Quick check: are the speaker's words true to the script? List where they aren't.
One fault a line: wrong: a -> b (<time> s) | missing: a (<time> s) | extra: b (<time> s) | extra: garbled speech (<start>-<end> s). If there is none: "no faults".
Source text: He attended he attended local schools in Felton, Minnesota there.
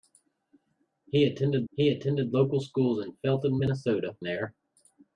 no faults